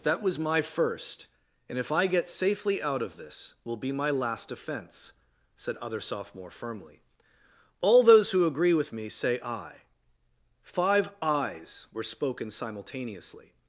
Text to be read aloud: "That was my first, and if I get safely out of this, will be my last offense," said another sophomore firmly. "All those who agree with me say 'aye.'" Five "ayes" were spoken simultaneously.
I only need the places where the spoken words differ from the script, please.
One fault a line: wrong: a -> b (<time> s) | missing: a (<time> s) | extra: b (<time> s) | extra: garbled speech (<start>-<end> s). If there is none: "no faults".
wrong: another -> other (5.8 s)